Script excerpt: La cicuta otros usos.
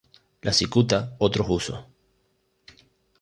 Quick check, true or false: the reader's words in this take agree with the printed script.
true